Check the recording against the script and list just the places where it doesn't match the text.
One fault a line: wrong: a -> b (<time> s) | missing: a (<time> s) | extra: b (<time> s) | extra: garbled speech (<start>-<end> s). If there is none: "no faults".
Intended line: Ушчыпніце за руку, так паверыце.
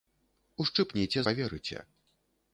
missing: за руку так (1.2 s)